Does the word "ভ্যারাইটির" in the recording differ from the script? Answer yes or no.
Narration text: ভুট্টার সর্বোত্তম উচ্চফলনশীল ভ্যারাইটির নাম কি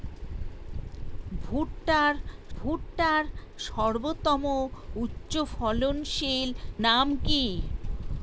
yes